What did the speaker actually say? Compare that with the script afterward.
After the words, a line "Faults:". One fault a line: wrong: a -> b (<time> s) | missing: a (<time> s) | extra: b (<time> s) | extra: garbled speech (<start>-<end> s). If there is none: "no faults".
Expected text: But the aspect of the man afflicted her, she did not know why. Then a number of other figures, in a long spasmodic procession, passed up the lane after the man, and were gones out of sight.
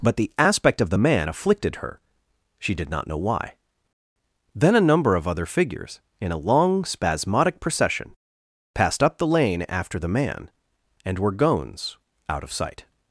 But the aspect of the man afflicted her, she did not know why. Then a number of other figures, in a long spasmodic procession, passed up the lane after the man, and were gones out of sight.
Faults:
no faults